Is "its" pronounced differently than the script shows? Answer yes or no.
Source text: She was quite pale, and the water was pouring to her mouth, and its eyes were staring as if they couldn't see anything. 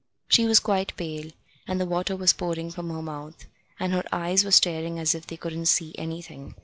yes